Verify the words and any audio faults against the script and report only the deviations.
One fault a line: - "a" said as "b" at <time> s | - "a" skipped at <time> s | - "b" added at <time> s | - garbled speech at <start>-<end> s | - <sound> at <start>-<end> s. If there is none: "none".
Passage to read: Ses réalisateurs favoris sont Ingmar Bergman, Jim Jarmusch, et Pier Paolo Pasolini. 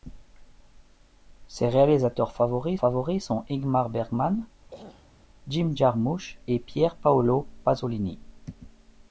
- "favoris" added at 2.7 s
- throat clearing at 4.7-5.1 s